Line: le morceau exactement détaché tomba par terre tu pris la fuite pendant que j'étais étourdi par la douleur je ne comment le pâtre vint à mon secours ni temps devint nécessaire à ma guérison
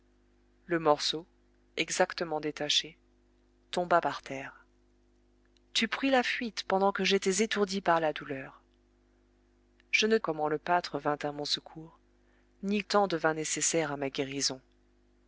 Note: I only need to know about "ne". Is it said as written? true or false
true